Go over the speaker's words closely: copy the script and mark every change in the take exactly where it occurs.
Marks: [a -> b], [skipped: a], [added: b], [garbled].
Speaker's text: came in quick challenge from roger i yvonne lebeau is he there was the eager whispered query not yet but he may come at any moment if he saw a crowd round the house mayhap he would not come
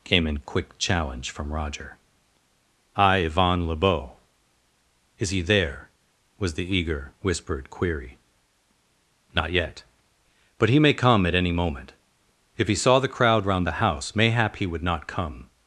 came in quick challenge from roger i yvonne lebeau is he there was the eager whispered query not yet but he may come at any moment if he saw [a -> the] crowd round the house mayhap he would not come